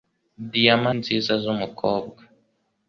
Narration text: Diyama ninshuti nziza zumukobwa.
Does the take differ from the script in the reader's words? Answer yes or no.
yes